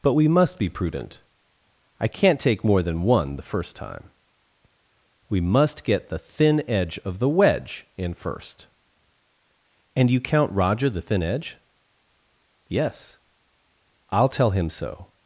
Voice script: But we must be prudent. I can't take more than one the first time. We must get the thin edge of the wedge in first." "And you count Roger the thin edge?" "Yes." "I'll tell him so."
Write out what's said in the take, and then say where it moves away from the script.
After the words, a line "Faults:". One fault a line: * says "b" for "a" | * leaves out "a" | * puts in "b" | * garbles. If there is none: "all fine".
But we must be prudent. I can't take more than one the first time. We must get the thin edge of the wedge in first." "And you count Roger the thin edge?" "Yes." "I'll tell him so."
Faults:
all fine